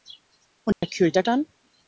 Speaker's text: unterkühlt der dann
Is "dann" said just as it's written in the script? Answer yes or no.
yes